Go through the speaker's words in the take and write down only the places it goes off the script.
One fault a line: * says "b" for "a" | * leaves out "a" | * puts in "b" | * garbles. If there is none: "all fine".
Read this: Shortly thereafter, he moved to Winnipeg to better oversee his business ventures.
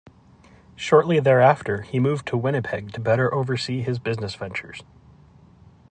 all fine